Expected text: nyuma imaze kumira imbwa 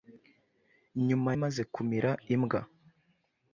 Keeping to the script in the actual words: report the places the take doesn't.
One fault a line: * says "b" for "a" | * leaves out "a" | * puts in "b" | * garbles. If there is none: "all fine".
all fine